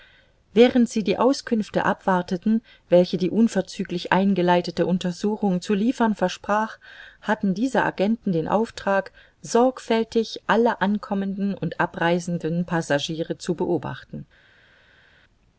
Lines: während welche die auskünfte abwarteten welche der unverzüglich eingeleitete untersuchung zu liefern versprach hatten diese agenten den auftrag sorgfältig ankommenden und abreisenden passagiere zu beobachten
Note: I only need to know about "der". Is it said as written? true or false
false